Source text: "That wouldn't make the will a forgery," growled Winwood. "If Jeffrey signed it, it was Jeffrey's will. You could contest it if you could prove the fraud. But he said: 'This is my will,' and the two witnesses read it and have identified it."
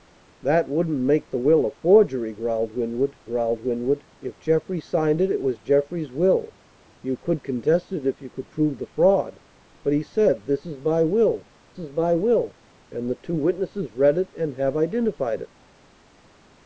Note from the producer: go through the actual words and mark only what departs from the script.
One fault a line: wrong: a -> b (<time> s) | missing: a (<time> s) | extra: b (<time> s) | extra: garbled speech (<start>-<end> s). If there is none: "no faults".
extra: growled Winwood (3.2 s)
extra: is my will (11.8 s)